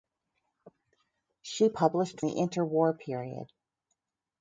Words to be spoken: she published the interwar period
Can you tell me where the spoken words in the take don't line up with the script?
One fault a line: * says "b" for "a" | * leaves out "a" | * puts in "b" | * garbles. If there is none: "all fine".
all fine